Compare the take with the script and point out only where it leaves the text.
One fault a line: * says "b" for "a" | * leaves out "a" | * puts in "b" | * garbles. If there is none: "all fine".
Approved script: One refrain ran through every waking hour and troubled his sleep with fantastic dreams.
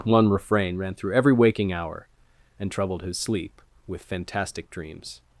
all fine